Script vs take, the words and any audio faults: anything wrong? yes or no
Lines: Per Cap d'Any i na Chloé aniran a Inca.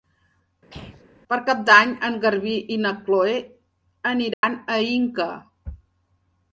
yes